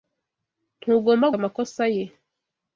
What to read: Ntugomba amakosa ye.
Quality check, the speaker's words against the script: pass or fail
pass